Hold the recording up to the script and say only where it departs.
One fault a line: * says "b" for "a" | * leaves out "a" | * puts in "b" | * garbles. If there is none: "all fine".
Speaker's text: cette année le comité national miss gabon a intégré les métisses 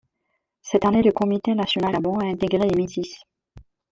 * leaves out "miss"